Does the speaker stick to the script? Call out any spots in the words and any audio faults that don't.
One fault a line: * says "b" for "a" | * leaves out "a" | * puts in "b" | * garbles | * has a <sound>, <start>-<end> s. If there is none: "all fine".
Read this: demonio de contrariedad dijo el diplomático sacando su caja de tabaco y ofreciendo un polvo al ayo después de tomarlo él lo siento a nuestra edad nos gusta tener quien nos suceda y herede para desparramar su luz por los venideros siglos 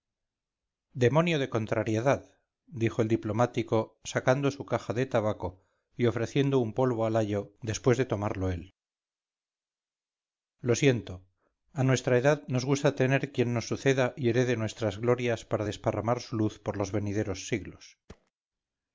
* puts in "nuestras glorias"
* has a thud, 18.1-18.3 s